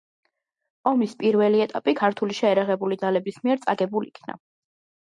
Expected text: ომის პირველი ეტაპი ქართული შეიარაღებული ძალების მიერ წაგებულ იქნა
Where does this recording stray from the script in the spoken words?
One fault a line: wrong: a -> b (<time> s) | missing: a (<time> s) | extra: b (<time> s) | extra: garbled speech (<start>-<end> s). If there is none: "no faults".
no faults